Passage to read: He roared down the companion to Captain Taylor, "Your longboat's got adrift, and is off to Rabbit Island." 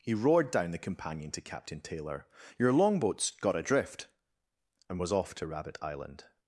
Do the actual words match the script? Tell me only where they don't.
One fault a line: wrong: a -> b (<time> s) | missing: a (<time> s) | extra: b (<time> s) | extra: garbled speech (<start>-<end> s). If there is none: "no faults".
wrong: is -> was (5.0 s)